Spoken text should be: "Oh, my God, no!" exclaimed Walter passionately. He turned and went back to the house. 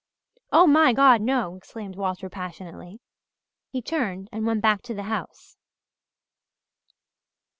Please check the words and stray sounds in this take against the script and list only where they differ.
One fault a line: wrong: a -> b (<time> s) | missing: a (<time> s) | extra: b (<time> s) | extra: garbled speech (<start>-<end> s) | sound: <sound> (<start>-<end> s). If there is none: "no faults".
no faults